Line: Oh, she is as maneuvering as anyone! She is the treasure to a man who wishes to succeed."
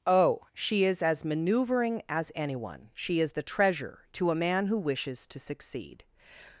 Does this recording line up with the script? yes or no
yes